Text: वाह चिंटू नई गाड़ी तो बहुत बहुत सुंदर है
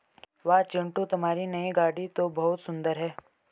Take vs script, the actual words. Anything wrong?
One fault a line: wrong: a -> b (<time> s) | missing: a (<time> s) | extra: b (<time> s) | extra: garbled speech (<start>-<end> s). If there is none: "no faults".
extra: तुम्हारी (1.1 s)
missing: बहुत (2.6 s)